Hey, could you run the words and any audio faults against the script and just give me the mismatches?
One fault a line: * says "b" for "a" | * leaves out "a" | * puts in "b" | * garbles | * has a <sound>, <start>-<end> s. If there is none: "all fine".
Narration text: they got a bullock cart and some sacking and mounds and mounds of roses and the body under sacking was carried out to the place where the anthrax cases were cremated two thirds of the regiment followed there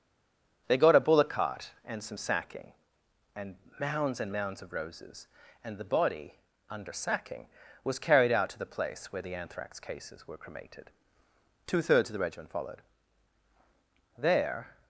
all fine